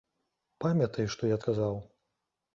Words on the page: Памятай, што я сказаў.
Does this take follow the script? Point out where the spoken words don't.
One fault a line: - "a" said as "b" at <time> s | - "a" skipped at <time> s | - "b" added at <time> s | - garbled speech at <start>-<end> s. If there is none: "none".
none